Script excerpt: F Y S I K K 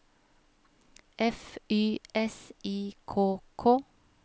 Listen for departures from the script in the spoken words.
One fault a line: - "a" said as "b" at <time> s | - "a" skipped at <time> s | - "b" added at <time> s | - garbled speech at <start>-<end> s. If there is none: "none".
none